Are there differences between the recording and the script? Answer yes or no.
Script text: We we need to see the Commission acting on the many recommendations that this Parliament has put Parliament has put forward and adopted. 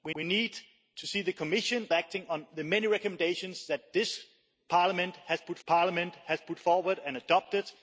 no